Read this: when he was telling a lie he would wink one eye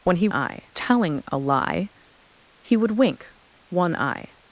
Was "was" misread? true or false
true